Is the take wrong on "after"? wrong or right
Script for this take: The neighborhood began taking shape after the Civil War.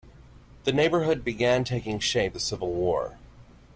wrong